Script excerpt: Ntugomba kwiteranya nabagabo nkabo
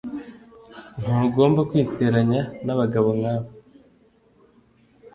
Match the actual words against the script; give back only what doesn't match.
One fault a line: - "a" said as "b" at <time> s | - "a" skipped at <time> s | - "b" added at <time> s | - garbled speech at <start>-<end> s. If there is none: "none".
none